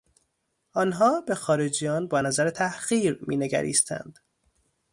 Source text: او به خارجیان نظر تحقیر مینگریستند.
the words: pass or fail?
fail